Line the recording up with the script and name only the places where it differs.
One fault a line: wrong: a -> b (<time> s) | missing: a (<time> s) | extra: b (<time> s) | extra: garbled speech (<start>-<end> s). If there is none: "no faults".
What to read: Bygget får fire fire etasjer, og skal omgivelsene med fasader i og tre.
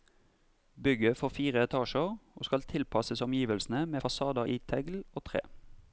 missing: fire (1.6 s)
extra: tilpasses (2.6 s)
extra: tegl (4.6 s)